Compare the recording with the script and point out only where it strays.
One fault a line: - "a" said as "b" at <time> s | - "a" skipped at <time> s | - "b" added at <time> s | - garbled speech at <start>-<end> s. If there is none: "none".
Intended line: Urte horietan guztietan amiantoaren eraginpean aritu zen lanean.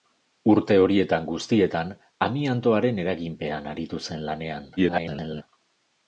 - garbled speech at 4.8-5.4 s